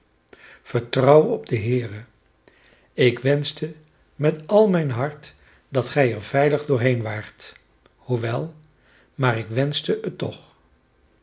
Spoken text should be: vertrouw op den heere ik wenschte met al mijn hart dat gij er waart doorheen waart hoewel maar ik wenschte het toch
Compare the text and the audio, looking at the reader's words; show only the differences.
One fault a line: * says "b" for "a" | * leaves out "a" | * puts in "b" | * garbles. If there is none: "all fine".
* says "veilig" for "waart"